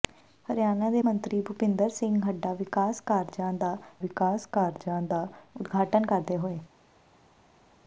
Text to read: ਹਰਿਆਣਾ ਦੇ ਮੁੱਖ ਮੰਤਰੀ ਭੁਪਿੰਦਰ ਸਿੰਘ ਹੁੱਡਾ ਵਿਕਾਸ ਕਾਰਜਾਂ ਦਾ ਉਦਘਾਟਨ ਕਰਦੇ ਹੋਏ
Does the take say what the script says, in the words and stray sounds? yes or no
no